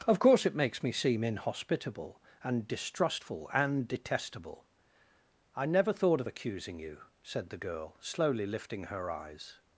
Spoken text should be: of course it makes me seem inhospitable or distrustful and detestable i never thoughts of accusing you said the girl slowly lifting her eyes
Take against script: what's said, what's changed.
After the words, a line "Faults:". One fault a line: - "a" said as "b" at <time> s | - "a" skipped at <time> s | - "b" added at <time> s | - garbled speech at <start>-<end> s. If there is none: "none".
of course it makes me seem inhospitable and distrustful and detestable i never thought of accusing you said the girl slowly lifting her eyes
Faults:
- "or" said as "and" at 2.4 s
- "thoughts" said as "thought" at 5.9 s